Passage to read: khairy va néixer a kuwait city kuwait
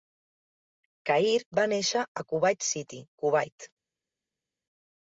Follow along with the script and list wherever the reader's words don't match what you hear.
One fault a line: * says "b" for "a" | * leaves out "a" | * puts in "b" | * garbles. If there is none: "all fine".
all fine